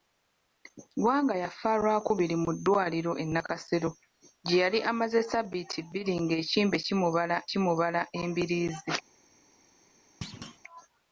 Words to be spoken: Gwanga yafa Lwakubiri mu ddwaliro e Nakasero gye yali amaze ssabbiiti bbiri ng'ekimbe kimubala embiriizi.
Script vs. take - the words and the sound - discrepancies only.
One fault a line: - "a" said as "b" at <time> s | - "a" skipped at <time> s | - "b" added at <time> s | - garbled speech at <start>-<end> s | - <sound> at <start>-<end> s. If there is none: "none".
- "kimubala" added at 7.5 s
- thud at 10.2-10.6 s